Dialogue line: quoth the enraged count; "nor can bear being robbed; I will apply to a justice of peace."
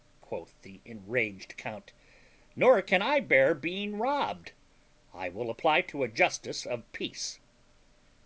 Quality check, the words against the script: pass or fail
fail